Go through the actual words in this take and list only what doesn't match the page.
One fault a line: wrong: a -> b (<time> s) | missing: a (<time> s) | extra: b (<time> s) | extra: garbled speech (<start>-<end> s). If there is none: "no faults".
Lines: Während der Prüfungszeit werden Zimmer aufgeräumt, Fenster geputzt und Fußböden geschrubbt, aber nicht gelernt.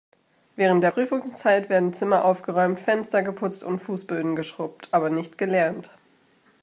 no faults